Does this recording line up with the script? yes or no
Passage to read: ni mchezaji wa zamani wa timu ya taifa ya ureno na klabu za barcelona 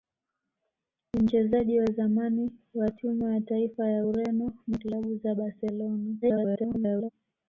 no